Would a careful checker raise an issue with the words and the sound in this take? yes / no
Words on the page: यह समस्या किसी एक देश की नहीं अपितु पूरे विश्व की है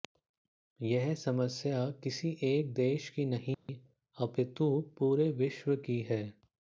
yes